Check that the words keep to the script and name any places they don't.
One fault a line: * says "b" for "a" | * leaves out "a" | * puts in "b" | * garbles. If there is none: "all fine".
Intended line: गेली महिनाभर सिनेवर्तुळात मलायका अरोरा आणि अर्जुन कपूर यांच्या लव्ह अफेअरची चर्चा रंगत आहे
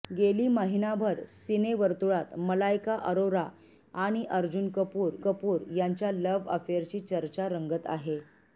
* puts in "कपूर"